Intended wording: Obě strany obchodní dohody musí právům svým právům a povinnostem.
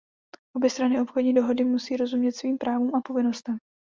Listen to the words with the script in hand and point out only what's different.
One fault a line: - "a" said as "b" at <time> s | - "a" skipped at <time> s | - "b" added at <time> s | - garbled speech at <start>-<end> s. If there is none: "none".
- "právům" said as "rozumět" at 2.0 s